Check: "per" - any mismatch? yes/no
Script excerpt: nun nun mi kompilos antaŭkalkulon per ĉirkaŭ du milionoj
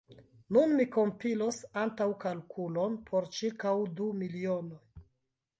yes